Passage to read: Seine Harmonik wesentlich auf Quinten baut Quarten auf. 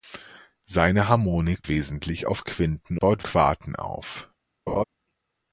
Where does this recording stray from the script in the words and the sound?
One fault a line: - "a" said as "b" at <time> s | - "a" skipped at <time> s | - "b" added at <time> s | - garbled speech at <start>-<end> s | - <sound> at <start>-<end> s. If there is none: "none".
- laugh at 4.7-4.8 s